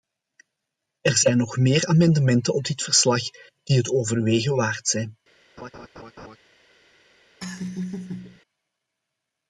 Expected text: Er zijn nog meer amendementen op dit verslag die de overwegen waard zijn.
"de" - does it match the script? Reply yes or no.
no